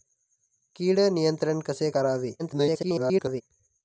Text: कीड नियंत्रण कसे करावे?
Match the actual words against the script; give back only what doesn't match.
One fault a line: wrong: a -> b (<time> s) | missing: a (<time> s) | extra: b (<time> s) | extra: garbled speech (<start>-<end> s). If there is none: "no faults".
extra: garbled speech (2.4-3.4 s)